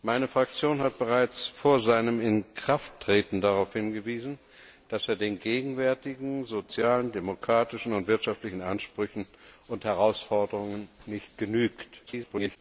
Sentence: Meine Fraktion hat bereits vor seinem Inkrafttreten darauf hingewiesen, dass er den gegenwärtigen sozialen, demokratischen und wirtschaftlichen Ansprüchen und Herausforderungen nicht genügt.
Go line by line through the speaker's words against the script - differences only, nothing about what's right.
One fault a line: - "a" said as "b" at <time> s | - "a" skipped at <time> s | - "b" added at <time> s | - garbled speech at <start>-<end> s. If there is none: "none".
- garbled speech at 12.1-12.6 s